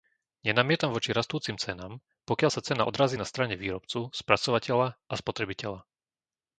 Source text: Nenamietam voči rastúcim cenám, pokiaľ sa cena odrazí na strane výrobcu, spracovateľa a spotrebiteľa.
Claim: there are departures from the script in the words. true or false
false